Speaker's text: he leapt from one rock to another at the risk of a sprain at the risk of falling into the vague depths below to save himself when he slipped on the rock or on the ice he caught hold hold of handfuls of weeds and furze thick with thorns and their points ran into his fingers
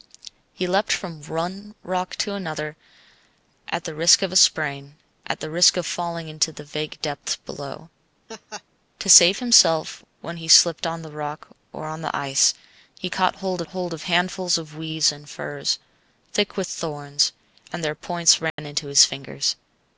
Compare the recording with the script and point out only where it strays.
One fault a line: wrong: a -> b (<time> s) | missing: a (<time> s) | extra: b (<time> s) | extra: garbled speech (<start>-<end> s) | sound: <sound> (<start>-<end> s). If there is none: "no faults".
sound: laugh (8.3-8.6 s)
sound: dropout (18.5-18.6 s)